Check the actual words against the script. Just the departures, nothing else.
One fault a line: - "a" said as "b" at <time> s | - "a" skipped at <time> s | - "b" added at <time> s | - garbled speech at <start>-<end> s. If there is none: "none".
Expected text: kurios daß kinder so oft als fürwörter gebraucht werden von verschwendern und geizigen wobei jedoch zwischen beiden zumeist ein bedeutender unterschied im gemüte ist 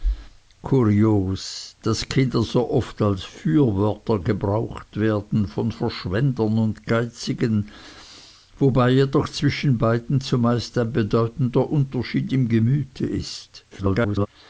- garbled speech at 13.7-14.3 s